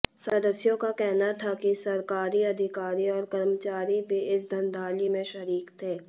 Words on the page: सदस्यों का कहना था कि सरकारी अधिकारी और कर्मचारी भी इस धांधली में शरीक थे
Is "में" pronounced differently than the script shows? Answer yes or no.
no